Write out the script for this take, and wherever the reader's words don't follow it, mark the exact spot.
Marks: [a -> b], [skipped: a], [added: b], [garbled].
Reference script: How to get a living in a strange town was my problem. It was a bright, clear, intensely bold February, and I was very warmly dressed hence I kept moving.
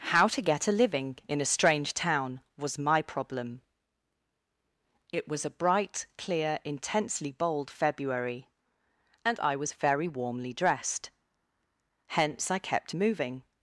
How to get a living in a strange town was my problem. It was a bright, clear, intensely bold February, and I was very warmly dressed hence I kept moving.